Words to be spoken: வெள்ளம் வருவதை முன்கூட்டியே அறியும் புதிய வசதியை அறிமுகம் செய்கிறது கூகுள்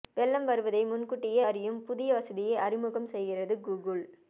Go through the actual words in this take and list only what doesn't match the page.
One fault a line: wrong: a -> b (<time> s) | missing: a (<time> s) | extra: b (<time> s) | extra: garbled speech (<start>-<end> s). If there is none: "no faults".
no faults